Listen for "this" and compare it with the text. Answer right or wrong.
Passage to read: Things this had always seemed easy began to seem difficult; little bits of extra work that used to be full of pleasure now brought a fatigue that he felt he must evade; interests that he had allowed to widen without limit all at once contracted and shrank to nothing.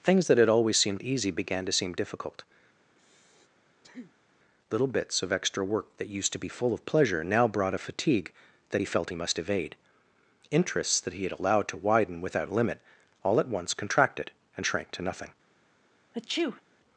wrong